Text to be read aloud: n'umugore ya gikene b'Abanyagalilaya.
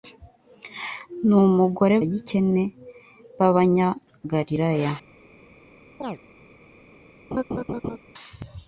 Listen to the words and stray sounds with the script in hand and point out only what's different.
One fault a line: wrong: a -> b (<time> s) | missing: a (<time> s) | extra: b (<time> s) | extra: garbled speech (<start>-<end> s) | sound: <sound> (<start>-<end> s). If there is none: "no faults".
sound: chirp (6.0-6.2 s)
sound: laugh (7.3-8.0 s)